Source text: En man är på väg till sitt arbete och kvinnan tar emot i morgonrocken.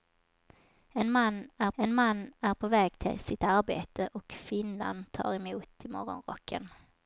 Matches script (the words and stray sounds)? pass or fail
fail